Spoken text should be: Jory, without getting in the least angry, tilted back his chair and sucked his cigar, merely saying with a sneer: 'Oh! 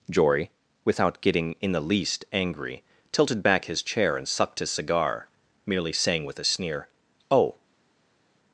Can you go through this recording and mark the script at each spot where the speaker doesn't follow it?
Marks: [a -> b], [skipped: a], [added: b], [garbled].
Jory, without getting in the least angry, tilted back his chair and sucked his cigar, merely saying with a sneer: 'Oh!